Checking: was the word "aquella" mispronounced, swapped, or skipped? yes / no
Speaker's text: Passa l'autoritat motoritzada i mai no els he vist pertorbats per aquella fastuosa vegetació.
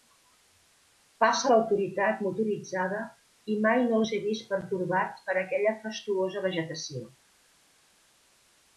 no